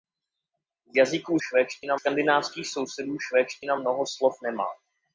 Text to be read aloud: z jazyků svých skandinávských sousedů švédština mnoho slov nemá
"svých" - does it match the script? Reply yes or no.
no